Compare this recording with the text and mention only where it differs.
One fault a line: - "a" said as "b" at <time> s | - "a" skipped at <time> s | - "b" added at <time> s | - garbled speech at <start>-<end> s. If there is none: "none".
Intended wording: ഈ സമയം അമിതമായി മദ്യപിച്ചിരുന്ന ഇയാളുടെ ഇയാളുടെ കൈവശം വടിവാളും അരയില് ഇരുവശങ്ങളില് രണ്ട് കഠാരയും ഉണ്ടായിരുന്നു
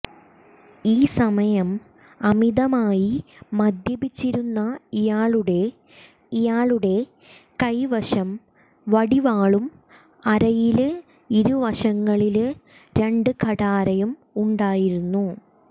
none